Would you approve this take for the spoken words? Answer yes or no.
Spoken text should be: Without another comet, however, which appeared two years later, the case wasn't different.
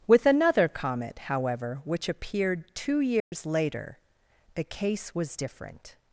no